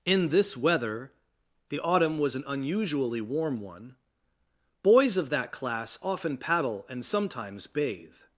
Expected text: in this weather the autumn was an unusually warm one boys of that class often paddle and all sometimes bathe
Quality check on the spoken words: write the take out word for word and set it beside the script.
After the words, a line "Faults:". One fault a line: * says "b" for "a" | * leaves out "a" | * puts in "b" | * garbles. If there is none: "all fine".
in this weather the autumn was an unusually warm one boys of that class often paddle and sometimes bathe
Faults:
* leaves out "all"